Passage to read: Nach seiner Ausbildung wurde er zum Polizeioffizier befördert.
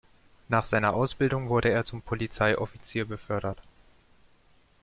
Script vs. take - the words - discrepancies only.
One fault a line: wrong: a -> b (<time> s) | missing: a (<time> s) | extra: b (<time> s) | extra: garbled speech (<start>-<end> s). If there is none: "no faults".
no faults